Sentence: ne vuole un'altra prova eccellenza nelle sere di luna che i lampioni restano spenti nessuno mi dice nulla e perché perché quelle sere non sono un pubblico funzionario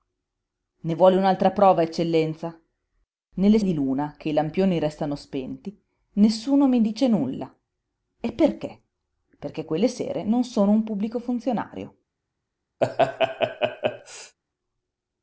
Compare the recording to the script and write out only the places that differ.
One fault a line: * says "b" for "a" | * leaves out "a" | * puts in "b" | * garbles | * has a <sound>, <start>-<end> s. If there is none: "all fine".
* leaves out "sere"
* has a laugh, 12.8-14.4 s